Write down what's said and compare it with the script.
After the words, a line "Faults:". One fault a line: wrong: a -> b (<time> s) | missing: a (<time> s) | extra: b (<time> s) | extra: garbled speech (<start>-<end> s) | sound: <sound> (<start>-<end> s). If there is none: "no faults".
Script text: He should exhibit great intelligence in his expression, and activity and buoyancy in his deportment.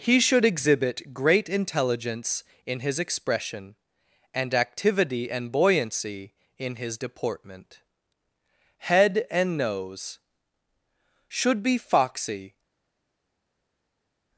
He should exhibit great intelligence in his expression, and activity and buoyancy in his deportment. HEAD AND NOSE Should be foxy
Faults:
extra: HEAD AND NOSE Should be foxy (8.8 s)